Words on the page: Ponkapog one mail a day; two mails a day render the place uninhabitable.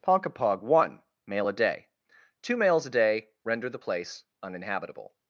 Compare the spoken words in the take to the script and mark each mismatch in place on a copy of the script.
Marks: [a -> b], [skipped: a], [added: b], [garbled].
Ponkapog one mail a day; two mails a day render the place uninhabitable.